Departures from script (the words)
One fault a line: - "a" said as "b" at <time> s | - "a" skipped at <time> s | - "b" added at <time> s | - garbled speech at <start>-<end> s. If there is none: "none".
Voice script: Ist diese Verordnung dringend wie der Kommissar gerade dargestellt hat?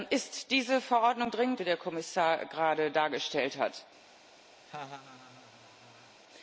none